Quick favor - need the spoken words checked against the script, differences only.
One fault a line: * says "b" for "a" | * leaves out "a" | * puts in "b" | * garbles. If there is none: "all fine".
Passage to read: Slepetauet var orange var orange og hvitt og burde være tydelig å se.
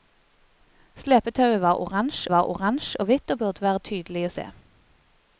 all fine